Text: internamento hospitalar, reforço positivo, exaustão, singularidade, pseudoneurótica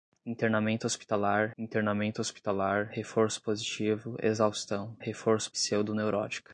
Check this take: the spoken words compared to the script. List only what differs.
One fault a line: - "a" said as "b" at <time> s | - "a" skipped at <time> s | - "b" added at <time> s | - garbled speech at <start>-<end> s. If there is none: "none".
- "internamento hospitalar" added at 1.6 s
- "singularidade" said as "reforço" at 5.0 s